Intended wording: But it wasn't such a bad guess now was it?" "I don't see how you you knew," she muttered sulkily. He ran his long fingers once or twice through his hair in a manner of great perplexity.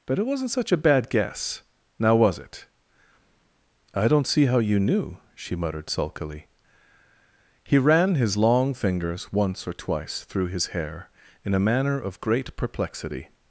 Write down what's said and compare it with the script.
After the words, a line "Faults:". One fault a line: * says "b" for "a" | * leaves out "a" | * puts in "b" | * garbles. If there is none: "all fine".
But it wasn't such a bad guess now was it?" "I don't see how you knew," she muttered sulkily. He ran his long fingers once or twice through his hair in a manner of great perplexity.
Faults:
* leaves out "you"